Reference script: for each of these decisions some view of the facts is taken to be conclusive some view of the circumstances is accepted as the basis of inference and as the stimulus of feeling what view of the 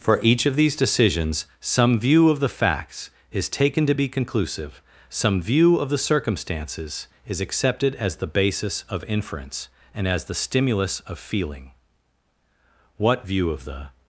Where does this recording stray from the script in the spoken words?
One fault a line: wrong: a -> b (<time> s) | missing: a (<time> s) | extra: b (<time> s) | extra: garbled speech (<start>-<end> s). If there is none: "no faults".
no faults